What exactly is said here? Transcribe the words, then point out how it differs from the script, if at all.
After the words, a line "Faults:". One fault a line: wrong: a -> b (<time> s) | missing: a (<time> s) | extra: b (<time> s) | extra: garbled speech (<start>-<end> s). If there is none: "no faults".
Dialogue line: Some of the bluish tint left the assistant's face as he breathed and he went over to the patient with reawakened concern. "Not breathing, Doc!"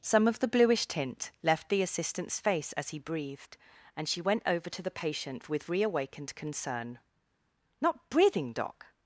Some of the bluish tint left the assistant's face as he breathed and she went over to the patient with reawakened concern. "Not breathing, Doc!"
Faults:
wrong: he -> she (4.1 s)